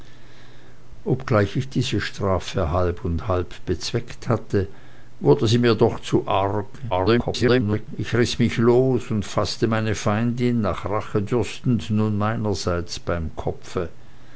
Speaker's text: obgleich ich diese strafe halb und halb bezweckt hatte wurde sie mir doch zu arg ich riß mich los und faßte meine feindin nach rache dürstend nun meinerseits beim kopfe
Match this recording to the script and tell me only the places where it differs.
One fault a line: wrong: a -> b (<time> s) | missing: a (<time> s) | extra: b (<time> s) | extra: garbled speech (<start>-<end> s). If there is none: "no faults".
extra: garbled speech (6.9-7.9 s)